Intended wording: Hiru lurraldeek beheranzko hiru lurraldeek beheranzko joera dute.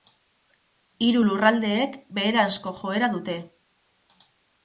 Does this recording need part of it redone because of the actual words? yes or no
yes